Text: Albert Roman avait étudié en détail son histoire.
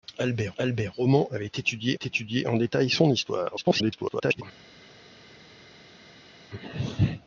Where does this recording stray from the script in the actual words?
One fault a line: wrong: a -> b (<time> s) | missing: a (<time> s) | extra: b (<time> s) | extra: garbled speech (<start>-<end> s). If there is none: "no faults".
extra: albert (0.6 s)
extra: étudié (1.9 s)
extra: garbled speech (3.6-4.4 s)